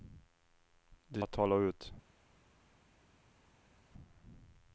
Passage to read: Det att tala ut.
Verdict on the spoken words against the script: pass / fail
pass